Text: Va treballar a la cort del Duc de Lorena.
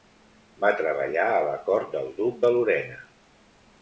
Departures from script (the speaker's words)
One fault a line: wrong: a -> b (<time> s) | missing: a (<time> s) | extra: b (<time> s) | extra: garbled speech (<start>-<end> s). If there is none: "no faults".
no faults